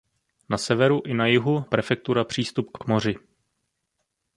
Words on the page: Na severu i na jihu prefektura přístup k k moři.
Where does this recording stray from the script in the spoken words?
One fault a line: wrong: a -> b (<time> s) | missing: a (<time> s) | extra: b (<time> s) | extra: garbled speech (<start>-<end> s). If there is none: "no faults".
no faults